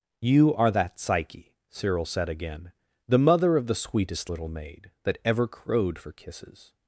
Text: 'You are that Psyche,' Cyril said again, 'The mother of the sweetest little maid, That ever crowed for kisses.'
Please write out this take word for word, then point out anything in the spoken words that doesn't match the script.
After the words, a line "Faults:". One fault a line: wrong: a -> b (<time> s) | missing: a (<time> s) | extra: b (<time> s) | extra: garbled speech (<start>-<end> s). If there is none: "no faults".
'You are that Psyche,' Cyril said again, 'The mother of the sweetest little maid, That ever crowed for kisses.'
Faults:
no faults